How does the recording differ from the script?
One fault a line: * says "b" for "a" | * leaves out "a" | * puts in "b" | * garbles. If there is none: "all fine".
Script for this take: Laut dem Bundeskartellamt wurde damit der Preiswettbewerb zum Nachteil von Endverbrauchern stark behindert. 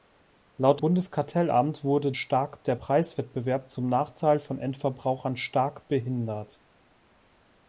* leaves out "dem"
* says "stark" for "damit"